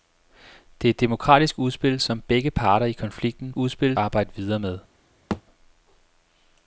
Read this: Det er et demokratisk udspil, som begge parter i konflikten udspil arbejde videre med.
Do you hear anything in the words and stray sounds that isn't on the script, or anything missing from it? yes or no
yes